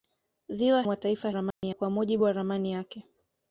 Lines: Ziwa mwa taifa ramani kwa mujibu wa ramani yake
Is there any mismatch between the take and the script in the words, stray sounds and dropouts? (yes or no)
yes